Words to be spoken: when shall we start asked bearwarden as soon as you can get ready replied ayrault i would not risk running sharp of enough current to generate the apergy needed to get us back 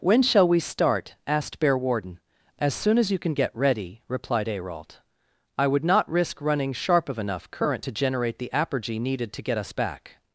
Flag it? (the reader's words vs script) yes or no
no